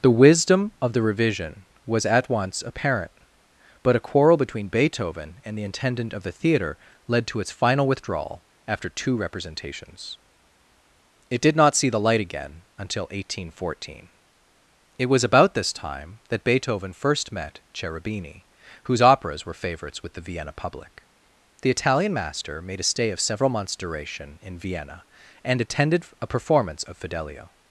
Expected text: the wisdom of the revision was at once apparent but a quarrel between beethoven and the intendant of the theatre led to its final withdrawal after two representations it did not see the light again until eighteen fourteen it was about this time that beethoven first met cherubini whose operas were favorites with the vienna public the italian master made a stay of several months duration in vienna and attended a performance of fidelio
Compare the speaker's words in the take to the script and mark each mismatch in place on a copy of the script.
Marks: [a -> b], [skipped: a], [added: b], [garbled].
the wisdom of the revision was at once apparent but a quarrel between beethoven and the intendant of the theatre led to its final withdrawal after two representations it did not see the light again until eighteen fourteen it was about this time that beethoven first met cherubini whose operas were favorites with the vienna public the italian master made a stay of several months duration in vienna and attended a performance of fidelio